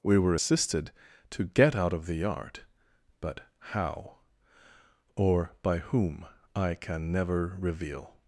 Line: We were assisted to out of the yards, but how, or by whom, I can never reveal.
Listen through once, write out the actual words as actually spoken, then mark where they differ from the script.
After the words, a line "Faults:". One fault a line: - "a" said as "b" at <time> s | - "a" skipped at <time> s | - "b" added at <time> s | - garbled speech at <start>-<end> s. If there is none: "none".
We were assisted to get out of the yard, but how, or by whom, I can never reveal.
Faults:
- "get" added at 1.4 s
- "yards" said as "yard" at 2.1 s